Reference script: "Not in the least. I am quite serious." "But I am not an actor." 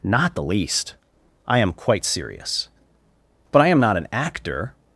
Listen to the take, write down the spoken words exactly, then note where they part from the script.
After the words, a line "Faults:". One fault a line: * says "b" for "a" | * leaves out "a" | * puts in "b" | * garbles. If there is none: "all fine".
"Not the least. I am quite serious." "But I am not an actor."
Faults:
* leaves out "in"